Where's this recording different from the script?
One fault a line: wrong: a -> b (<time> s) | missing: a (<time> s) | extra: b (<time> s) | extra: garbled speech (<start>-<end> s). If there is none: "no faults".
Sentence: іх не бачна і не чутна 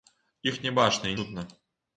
missing: не (1.2 s)